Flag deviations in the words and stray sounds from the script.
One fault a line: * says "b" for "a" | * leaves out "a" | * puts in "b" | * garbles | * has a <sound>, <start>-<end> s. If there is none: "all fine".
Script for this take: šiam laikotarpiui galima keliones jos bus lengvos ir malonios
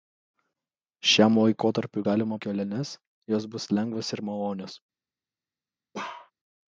* has a bark, 5.9-6.3 s